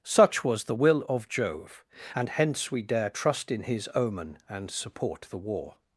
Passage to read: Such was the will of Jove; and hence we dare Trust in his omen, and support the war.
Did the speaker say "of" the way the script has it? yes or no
yes